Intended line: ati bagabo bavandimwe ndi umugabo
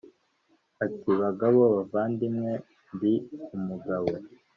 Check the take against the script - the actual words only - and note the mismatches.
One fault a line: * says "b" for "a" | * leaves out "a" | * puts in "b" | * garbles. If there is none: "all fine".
all fine